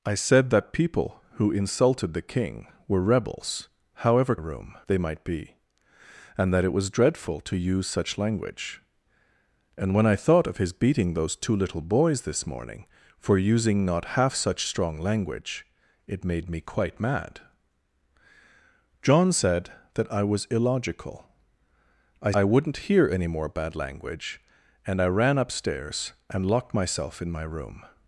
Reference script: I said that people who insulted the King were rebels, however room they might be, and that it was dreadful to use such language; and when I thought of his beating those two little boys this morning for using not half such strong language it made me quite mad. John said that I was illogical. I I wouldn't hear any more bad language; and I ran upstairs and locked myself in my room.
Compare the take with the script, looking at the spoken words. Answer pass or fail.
pass